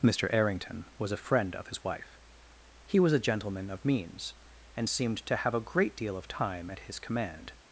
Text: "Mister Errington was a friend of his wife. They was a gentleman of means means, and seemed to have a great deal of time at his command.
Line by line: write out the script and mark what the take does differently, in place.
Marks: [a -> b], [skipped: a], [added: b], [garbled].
"Mister Errington was a friend of his wife. [They -> He] was a gentleman of means [skipped: means,] and seemed to have a great deal of time at his command.